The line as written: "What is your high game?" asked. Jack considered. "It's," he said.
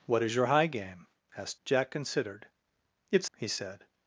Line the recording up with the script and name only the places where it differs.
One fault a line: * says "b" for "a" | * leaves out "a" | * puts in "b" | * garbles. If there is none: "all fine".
all fine